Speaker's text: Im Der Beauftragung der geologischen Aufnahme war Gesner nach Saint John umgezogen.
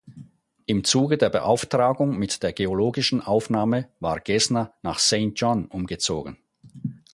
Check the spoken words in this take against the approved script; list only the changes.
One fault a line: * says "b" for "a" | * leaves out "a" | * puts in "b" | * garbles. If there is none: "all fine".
* puts in "Zuge"
* puts in "mit"